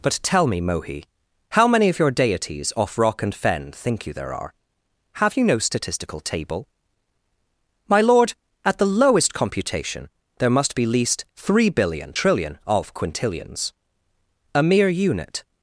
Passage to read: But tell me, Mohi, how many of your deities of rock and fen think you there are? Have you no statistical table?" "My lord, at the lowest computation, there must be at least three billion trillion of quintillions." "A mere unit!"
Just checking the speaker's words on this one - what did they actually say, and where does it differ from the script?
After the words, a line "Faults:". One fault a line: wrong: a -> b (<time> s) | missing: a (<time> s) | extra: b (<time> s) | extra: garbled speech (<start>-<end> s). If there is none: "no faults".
But tell me, Mohi, how many of your deities off rock and fen think you there are? Have you no statistical table?" "My lord, at the lowest computation, there must be least three billion trillion of quintillions." "A mere unit!"
Faults:
wrong: of -> off (2.8 s)
missing: at (10.8 s)